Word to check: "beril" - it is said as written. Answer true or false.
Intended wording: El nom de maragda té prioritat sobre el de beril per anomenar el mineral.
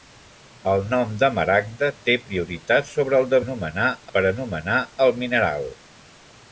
false